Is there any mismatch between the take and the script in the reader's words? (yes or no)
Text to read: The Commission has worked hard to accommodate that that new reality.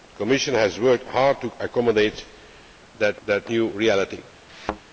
no